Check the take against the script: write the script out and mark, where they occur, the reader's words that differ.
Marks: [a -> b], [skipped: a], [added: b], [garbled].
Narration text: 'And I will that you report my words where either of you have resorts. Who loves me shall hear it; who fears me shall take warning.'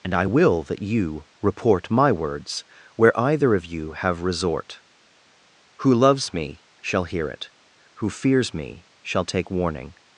'And I will that you report my words where either of you have [resorts. -> resort] Who loves me shall hear it; who fears me shall take warning.'